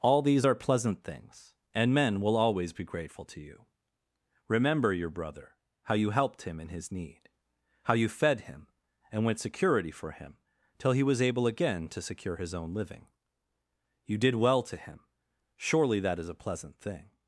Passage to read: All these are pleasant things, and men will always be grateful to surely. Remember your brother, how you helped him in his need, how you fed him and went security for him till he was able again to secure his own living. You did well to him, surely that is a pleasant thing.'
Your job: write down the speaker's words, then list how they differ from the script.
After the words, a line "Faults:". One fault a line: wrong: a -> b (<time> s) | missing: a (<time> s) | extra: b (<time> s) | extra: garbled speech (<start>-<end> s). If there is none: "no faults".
All these are pleasant things, and men will always be grateful to you. Remember your brother, how you helped him in his need, how you fed him and went security for him till he was able again to secure his own living. You did well to him, surely that is a pleasant thing.'
Faults:
wrong: surely -> you (3.4 s)